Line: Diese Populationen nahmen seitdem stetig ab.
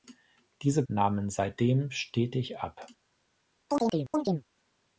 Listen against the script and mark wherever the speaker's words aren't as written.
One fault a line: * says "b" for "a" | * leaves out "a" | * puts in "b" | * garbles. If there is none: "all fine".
* leaves out "Populationen"